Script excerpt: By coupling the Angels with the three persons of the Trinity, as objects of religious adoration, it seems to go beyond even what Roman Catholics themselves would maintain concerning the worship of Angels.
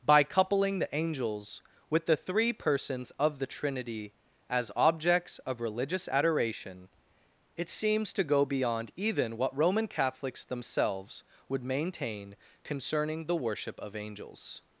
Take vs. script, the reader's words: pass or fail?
pass